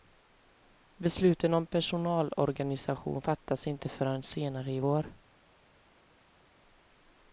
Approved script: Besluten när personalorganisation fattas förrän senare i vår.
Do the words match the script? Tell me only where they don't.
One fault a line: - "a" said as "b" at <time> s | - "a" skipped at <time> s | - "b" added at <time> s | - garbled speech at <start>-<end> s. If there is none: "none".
- "när" said as "om" at 1.5 s
- "inte" added at 3.7 s